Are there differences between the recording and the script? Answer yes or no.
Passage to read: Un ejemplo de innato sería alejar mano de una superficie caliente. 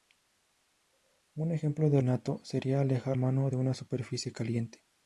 no